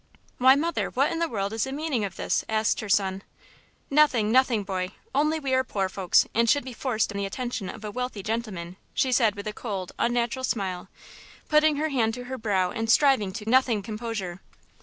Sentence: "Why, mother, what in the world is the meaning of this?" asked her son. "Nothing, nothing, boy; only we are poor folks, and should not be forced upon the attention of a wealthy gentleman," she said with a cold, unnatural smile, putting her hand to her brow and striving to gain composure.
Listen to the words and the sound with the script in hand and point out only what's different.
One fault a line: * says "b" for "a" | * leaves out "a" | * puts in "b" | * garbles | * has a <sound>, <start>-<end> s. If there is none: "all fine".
* leaves out "not"
* leaves out "upon"
* says "nothing" for "gain"